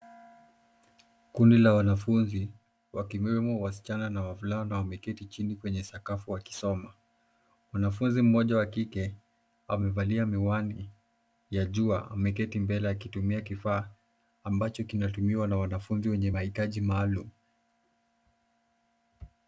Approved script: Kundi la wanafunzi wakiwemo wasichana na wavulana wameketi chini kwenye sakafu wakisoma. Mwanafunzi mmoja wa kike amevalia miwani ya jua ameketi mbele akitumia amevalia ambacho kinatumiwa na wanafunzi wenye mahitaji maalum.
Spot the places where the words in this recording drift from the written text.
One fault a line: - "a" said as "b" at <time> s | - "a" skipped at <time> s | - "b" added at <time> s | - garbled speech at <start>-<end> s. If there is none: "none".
- "amevalia" said as "kifaa" at 13.4 s